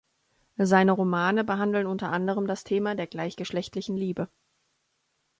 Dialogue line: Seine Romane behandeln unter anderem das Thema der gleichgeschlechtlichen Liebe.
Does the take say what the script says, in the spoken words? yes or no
yes